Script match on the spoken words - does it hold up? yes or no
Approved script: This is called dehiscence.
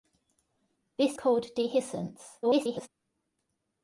no